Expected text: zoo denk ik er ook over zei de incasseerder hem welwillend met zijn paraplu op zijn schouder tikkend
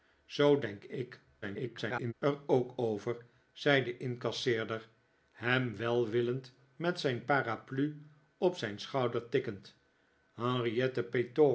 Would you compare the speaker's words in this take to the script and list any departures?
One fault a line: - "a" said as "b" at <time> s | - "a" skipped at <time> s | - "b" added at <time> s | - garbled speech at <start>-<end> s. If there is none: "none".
- garbled speech at 1.4-2.1 s